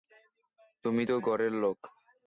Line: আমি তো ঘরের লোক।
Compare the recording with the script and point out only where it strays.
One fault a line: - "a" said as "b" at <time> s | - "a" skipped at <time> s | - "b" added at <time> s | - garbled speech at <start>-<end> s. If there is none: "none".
- "আমি" said as "তুমি" at 0.8 s